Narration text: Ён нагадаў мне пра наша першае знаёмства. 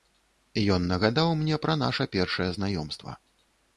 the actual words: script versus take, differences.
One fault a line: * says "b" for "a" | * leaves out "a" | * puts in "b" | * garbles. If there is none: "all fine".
all fine